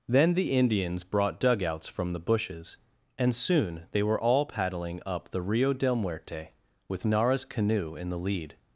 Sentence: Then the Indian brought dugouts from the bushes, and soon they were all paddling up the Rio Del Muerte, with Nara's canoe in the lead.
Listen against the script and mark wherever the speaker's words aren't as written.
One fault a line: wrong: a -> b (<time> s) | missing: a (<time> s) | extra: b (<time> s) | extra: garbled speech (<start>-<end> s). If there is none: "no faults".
wrong: Indian -> Indians (0.5 s)